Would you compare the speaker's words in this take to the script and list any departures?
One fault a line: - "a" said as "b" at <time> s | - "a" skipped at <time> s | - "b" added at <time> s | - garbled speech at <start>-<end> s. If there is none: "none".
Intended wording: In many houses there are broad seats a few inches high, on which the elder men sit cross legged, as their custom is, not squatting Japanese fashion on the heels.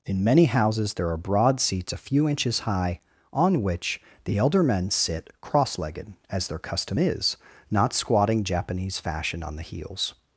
none